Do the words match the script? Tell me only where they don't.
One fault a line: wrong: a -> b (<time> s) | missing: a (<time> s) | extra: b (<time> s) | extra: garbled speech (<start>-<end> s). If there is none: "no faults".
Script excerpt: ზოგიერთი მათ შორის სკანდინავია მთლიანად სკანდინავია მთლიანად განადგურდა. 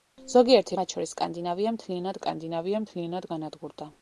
no faults